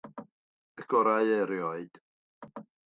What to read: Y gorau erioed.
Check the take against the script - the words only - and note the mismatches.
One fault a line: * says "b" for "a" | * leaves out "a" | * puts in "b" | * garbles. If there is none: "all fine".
all fine